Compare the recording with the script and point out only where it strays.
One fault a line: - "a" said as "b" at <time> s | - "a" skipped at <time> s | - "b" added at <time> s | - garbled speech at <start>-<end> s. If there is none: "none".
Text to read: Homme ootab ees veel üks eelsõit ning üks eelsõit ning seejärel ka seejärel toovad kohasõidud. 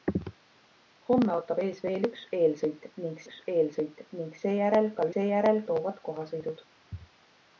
none